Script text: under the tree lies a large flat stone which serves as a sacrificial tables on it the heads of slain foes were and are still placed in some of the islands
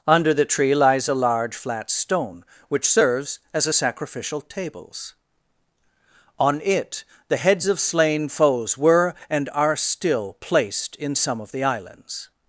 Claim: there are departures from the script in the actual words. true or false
false